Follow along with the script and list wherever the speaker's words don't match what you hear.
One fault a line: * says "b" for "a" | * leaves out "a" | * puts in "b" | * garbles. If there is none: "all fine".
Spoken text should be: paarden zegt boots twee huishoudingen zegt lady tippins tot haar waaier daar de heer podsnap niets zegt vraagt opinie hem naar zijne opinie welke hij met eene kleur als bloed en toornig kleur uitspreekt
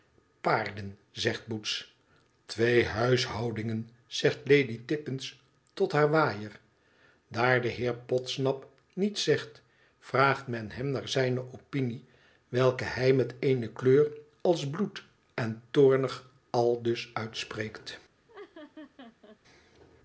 * says "men" for "opinie"
* says "aldus" for "kleur"